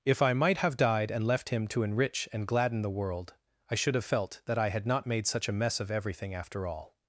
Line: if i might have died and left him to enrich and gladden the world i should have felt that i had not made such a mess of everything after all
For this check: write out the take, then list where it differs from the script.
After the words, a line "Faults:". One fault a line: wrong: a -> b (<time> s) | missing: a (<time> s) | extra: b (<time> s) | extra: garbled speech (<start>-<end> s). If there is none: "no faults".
if i might have died and left him to enrich and gladden the world i should have felt that i had not made such a mess of everything after all
Faults:
no faults